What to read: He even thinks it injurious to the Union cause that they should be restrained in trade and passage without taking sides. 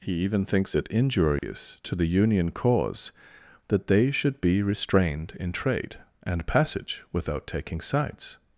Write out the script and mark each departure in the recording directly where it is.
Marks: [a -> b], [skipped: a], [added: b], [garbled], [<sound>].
He even thinks it injurious [dropout] to the Union cause that they should be restrained in trade and passage without taking sides.